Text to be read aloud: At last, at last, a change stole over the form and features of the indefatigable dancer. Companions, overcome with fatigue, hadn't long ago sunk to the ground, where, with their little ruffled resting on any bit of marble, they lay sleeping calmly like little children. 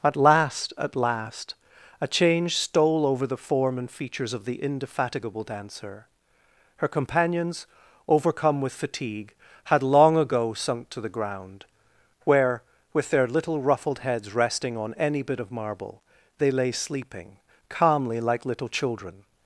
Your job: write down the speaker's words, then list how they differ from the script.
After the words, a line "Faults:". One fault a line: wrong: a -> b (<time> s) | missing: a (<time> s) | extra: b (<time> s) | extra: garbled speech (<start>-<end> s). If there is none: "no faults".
At last, at last, a change stole over the form and features of the indefatigable dancer. Her companions, overcome with fatigue, had long ago sunk to the ground, where, with their little ruffled heads resting on any bit of marble, they lay sleeping calmly like little children.
Faults:
extra: Her (6.8 s)
wrong: hadn't -> had (9.7 s)
extra: heads (14.0 s)